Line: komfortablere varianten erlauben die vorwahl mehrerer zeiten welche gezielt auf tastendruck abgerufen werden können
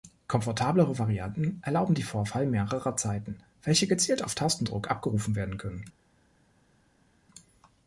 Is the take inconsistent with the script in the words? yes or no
no